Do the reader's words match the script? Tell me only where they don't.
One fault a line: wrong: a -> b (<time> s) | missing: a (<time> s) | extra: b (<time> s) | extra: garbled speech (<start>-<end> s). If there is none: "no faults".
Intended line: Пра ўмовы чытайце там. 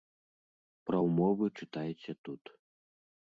wrong: там -> тут (2.3 s)